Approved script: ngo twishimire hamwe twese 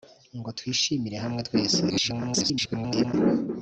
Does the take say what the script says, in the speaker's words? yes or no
no